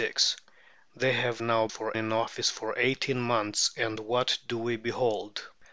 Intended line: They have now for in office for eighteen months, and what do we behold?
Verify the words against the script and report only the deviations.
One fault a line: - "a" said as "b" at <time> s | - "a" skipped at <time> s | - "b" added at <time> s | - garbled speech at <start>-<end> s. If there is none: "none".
none